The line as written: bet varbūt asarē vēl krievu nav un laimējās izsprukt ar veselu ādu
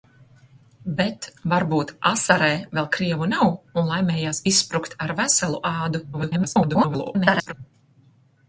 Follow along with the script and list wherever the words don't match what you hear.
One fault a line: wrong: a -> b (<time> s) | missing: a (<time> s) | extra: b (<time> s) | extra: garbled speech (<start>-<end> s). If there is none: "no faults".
extra: garbled speech (6.1-7.5 s)